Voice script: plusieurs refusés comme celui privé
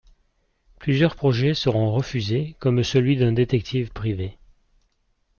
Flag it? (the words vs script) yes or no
yes